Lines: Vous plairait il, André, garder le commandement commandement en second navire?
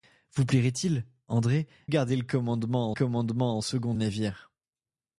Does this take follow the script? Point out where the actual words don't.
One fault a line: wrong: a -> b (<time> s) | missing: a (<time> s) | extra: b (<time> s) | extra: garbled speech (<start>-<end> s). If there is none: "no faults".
no faults